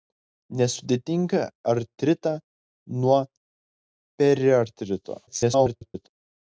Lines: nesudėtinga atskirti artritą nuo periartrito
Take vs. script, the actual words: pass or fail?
fail